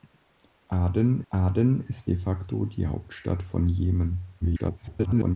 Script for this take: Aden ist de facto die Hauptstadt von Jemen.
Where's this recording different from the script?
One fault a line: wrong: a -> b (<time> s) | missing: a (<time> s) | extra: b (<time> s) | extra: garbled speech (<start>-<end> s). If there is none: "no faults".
extra: aden (1.3 s)
extra: garbled speech (4.4-5.4 s)